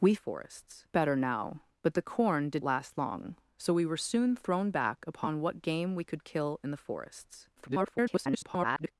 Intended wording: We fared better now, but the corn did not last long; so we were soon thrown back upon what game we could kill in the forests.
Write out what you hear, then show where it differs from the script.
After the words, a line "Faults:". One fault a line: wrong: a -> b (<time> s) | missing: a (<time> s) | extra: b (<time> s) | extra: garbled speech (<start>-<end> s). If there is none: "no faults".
We forests better now, but the corn did last long; so we were soon thrown back upon what game we could kill in the forests. [garbled]
Faults:
wrong: fared -> forests (0.1 s)
missing: not (2.6 s)
extra: garbled speech (7.6-8.9 s)